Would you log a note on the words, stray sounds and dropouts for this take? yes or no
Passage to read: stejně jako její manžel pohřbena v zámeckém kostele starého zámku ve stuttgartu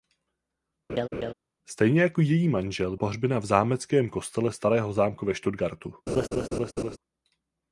yes